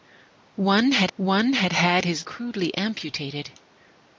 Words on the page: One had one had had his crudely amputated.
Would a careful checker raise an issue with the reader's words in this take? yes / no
no